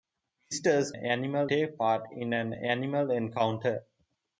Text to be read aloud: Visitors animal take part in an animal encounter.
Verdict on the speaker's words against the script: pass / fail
pass